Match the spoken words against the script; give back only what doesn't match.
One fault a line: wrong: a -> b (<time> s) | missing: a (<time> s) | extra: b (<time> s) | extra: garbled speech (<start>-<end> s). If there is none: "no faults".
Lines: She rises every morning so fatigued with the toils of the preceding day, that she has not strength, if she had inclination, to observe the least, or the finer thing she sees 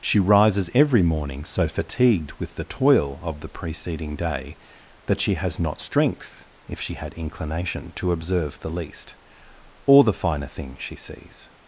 wrong: toils -> toil (2.6 s)